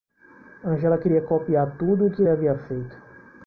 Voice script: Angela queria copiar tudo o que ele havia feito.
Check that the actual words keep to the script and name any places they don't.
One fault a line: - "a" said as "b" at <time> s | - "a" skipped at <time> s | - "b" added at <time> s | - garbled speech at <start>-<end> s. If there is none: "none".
- "ele" skipped at 2.2 s